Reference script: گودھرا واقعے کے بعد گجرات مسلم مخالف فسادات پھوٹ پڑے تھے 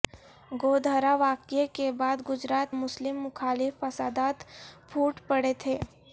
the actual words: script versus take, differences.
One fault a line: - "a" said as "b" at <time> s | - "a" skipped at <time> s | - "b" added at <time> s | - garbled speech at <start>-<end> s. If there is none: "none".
none